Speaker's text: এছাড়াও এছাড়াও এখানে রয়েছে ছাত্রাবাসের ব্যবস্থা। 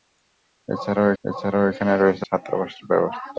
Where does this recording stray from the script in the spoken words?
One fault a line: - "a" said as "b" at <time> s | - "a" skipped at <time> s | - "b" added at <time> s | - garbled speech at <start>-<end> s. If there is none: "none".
none